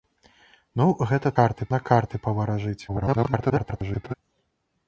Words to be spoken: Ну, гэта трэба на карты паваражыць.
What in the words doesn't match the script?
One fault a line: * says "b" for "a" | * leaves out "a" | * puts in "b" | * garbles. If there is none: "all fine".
* says "карты" for "трэба"
* garbles